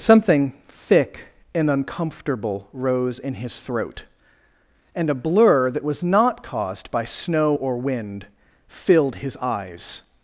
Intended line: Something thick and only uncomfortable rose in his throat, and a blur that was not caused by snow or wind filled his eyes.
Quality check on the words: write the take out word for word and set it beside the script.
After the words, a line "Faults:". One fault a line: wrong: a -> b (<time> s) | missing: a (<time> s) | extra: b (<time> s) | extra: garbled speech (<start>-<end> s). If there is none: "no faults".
Something thick and uncomfortable rose in his throat, and a blur that was not caused by snow or wind filled his eyes.
Faults:
missing: only (1.7 s)